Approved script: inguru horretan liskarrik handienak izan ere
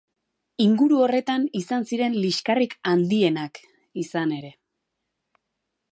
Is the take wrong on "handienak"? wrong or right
right